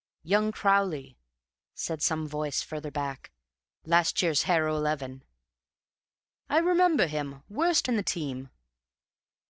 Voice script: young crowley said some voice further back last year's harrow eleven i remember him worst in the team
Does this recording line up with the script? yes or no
yes